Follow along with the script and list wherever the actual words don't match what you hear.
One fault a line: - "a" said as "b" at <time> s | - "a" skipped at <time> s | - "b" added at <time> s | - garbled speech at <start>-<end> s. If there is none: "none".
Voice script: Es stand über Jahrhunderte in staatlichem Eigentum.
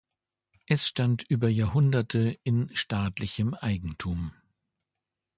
none